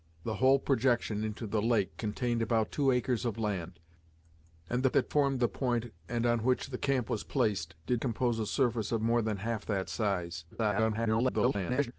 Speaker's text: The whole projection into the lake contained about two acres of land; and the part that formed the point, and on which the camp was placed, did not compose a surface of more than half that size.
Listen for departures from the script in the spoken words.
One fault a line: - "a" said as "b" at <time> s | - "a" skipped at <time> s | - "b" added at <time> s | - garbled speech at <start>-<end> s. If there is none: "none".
- "part" skipped at 4.9 s
- "not" skipped at 8.0 s
- garbled speech at 10.5-11.9 s